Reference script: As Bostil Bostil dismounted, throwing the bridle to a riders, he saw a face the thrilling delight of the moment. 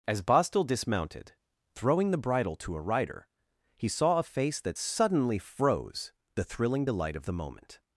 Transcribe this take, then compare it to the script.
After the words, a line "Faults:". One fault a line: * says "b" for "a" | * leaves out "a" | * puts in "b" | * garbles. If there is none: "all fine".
As Bostil dismounted, throwing the bridle to a rider, he saw a face that suddenly froze the thrilling delight of the moment.
Faults:
* leaves out "Bostil"
* says "rider" for "riders"
* puts in "that suddenly froze"